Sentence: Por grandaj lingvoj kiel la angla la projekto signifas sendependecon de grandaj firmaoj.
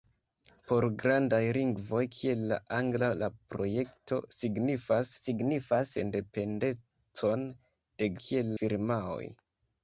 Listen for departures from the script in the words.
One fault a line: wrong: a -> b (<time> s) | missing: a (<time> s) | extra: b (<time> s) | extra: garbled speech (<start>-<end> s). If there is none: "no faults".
extra: signifas (5.2 s)
wrong: grandaj -> kiel (8.2 s)